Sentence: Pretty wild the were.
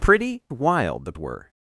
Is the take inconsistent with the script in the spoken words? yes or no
no